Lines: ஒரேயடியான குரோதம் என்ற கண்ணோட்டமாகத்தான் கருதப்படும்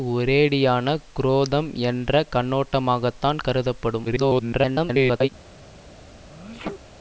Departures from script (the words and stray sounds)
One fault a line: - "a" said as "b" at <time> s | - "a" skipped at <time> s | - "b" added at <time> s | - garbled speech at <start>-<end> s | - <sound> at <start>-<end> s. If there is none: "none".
- garbled speech at 4.0-5.3 s
- sneeze at 6.3-6.8 s